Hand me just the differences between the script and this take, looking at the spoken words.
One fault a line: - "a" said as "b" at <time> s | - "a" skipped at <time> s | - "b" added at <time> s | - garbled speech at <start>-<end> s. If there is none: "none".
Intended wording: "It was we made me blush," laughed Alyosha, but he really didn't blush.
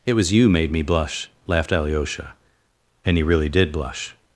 - "we" said as "you" at 0.3 s
- "but" said as "and" at 3.0 s
- "didn't" said as "did" at 3.5 s